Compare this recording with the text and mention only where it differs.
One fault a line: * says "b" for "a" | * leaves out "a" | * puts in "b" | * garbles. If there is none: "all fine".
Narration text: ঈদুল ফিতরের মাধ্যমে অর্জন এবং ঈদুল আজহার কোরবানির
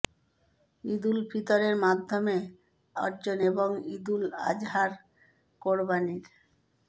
all fine